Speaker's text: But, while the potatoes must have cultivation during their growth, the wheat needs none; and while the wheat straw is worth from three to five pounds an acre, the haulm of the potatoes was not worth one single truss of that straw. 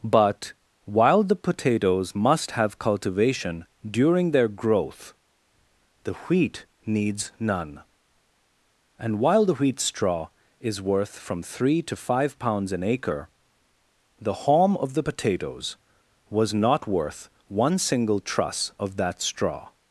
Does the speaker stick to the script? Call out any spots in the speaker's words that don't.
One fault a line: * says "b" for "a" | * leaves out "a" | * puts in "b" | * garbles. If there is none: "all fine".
all fine